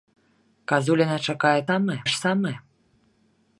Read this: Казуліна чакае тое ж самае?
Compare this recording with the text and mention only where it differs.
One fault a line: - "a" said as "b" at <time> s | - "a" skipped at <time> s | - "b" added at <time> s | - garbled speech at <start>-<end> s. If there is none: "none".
- "тое" said as "самае" at 1.7 s